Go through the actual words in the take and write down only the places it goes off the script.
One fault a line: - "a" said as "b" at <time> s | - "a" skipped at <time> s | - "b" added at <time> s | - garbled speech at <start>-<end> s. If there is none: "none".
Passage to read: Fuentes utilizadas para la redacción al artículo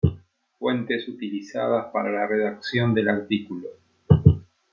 - "al" said as "del" at 2.9 s